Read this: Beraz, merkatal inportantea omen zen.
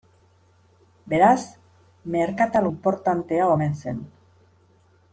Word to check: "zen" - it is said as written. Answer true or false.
true